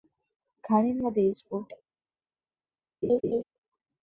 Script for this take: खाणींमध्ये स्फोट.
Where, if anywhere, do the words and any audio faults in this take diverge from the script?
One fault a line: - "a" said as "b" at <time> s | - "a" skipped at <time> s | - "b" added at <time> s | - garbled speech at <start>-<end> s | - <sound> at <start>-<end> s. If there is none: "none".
- laugh at 3.0-3.4 s